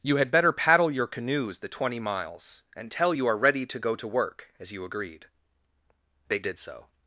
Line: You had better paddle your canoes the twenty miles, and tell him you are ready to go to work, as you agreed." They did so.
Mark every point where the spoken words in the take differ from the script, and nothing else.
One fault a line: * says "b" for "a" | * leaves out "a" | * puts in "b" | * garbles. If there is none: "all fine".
* leaves out "him"